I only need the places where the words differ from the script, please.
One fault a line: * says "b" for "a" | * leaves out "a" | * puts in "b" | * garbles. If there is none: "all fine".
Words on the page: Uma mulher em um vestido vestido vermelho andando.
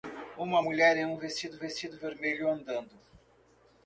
all fine